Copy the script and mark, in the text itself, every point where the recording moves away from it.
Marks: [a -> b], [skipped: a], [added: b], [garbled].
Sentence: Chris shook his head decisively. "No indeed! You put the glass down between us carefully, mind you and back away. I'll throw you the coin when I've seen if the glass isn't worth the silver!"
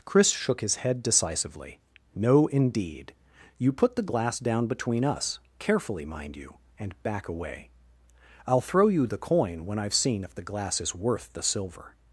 Chris shook his head decisively. "No indeed! You put the glass down between us carefully, mind you and back away. I'll throw you the coin when I've seen if the glass [isn't -> is] worth the silver!"